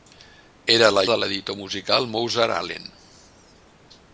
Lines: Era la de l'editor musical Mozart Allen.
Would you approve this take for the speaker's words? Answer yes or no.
yes